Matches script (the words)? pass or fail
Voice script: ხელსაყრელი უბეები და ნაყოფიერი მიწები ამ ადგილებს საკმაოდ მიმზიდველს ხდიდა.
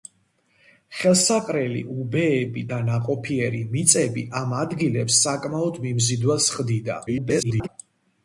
fail